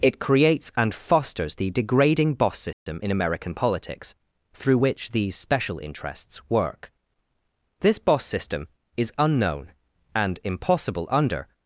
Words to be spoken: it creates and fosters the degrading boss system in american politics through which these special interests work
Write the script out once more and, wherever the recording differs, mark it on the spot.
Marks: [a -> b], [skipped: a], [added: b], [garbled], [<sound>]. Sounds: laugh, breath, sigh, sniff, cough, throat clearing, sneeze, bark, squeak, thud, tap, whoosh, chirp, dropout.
it creates and fosters the degrading boss system [dropout] in american politics through which these special interests work [added: this boss system is unknown and impossible under]